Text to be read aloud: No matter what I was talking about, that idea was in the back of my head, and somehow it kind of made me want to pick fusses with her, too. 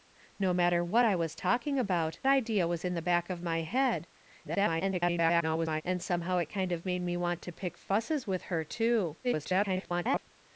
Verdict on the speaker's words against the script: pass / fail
fail